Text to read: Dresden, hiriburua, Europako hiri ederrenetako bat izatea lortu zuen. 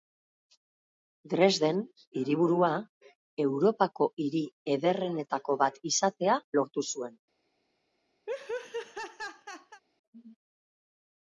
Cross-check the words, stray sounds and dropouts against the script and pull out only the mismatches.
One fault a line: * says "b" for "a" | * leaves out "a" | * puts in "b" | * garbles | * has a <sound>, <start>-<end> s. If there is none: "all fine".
* has a laugh, 8.3-9.8 s